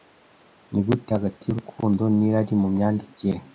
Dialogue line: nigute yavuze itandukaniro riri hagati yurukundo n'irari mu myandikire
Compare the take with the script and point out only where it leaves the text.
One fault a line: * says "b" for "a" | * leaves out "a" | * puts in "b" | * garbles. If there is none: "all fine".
* leaves out "yavuze itandukaniro riri"